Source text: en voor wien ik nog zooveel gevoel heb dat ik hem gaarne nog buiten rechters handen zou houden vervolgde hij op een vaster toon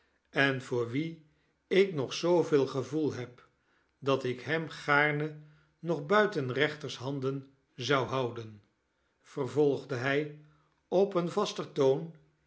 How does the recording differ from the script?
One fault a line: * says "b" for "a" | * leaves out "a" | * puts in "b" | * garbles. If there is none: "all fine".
all fine